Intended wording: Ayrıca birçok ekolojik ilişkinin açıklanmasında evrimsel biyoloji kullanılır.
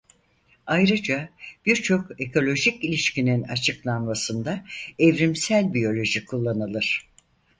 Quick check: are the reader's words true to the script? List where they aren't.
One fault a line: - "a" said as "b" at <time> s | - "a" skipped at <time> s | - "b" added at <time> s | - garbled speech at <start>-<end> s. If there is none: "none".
none